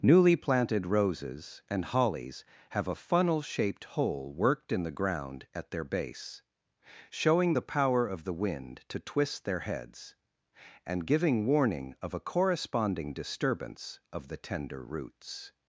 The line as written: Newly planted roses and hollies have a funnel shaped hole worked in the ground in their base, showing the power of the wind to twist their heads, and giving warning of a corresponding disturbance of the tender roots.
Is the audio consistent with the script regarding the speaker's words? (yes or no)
no